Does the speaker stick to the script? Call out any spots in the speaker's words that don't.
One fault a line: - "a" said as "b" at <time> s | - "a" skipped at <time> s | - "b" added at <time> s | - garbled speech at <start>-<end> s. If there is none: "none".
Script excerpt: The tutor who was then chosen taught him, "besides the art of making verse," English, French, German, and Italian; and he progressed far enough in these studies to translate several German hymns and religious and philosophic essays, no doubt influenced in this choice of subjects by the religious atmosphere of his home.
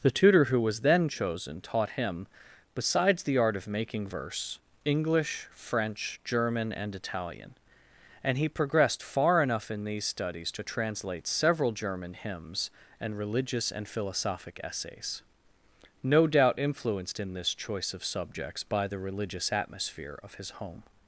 none